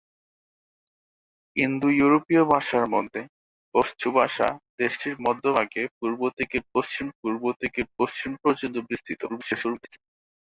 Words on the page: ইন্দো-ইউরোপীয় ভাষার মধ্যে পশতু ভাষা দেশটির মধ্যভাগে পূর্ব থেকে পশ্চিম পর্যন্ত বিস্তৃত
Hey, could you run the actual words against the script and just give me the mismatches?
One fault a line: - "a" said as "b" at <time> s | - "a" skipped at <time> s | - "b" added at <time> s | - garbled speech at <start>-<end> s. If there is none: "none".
- "পূর্ব থেকে পশ্চিম" added at 7.2 s
- garbled speech at 9.3-10.0 s